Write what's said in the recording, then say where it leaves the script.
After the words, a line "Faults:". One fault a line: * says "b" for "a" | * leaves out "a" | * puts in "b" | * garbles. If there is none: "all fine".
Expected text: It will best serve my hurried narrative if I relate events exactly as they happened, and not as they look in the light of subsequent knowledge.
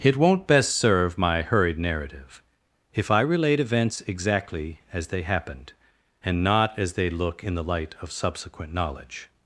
It won't best serve my hurried narrative if I relate events exactly as they happened, and not as they look in the light of subsequent knowledge.
Faults:
* says "won't" for "will"